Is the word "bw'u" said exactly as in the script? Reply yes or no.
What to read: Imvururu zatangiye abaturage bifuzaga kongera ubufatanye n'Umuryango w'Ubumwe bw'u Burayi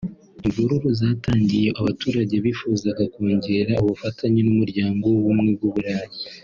yes